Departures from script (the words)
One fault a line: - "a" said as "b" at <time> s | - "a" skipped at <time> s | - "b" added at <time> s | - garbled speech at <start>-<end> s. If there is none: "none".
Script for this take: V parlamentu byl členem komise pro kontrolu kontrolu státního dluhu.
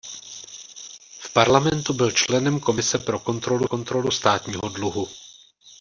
none